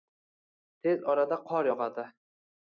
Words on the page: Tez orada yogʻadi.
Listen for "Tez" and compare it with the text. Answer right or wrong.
right